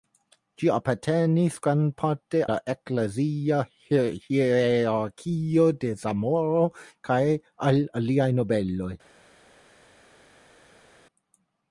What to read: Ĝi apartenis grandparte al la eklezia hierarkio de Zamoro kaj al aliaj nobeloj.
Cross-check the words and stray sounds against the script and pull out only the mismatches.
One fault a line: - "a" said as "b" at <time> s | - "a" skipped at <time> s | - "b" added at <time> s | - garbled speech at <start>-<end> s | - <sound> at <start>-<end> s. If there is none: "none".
- "al" skipped at 2.4 s